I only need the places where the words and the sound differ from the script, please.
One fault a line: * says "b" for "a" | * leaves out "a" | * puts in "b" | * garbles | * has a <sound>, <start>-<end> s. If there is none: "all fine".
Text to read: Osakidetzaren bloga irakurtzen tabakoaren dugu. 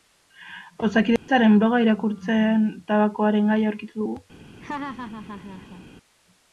* has a dropout, 1.2-1.3 s
* puts in "gaia aurkitu"
* has a laugh, 4.6-5.9 s